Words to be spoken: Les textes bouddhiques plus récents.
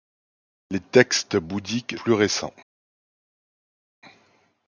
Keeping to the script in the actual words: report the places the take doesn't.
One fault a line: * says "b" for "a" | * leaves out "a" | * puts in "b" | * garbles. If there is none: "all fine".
all fine